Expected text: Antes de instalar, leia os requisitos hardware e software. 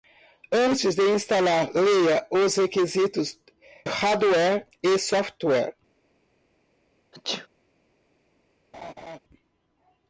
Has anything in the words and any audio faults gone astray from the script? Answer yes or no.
yes